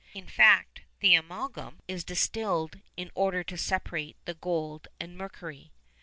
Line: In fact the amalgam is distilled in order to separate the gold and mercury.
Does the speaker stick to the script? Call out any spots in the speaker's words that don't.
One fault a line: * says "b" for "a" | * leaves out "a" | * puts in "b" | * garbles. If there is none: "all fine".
all fine